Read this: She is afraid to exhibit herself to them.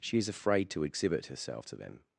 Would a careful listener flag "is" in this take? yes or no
no